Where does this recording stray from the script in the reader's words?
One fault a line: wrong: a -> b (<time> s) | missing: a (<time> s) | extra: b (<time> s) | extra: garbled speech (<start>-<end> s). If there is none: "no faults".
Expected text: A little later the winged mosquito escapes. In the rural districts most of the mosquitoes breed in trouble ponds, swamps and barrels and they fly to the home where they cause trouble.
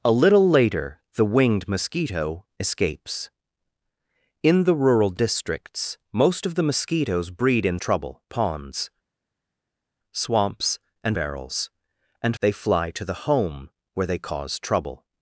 no faults